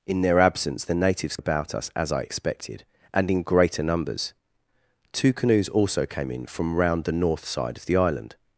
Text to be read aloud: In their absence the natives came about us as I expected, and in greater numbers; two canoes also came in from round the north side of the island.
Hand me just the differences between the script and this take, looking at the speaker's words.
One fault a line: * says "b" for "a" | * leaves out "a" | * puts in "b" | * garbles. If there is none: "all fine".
* leaves out "came"